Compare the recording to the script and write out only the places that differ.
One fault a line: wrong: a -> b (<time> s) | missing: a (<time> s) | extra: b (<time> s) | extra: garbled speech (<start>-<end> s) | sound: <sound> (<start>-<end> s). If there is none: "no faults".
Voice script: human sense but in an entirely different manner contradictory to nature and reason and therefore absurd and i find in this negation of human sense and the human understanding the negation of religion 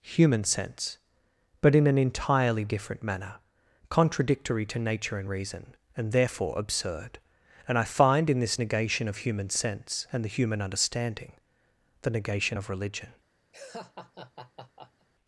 sound: laugh (13.5-15.1 s)